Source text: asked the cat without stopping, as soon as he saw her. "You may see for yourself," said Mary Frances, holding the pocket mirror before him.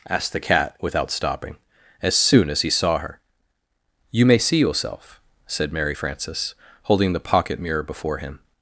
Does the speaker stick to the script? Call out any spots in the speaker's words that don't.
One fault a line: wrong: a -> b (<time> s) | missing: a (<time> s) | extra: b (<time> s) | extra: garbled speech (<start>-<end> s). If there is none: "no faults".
missing: for (4.6 s)